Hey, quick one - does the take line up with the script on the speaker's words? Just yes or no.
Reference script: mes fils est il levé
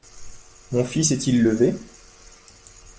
no